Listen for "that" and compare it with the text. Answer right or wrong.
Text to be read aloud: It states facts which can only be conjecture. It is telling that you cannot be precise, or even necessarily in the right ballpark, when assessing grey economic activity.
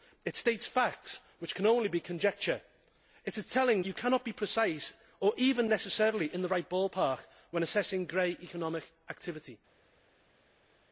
wrong